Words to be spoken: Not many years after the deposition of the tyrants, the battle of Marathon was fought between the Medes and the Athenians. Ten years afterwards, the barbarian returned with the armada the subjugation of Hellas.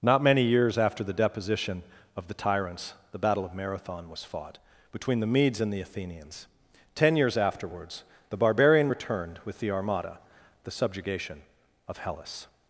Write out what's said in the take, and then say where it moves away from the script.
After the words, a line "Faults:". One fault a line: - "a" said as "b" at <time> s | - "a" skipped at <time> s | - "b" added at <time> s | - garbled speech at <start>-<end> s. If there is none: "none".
Not many years after the deposition of the tyrants, the battle of Marathon was fought between the Medes and the Athenians. Ten years afterwards, the barbarian returned with the armada the subjugation of Hellas.
Faults:
none